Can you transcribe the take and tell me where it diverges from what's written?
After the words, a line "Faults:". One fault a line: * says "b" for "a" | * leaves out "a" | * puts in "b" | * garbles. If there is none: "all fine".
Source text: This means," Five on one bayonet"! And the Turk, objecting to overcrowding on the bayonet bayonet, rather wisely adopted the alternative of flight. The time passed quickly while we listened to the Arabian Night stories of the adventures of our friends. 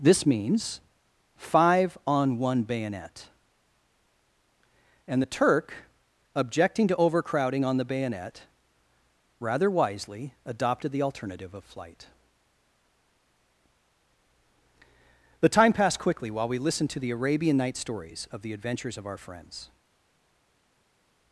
This means," Five on one bayonet"! And the Turk, objecting to overcrowding on the bayonet, rather wisely adopted the alternative of flight. The time passed quickly while we listened to the Arabian Night stories of the adventures of our friends.
Faults:
* leaves out "bayonet"